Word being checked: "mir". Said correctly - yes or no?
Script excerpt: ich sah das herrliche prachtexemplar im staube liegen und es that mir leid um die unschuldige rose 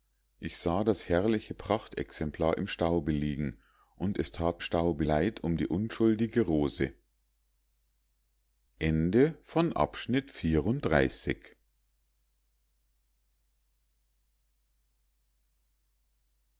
no